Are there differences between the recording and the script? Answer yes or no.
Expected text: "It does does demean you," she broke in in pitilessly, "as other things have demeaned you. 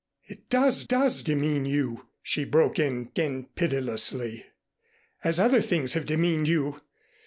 no